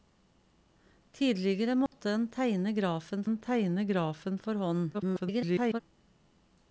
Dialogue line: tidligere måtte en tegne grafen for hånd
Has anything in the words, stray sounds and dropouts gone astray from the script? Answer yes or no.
yes